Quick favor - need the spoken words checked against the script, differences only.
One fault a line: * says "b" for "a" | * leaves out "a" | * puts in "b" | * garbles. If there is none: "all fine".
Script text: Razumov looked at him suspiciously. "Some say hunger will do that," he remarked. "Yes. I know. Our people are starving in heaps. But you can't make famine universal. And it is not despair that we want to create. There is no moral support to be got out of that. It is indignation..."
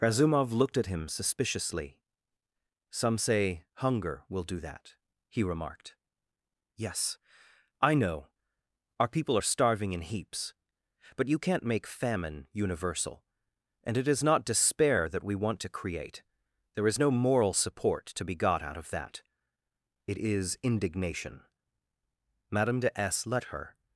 * puts in "Madame de S let her"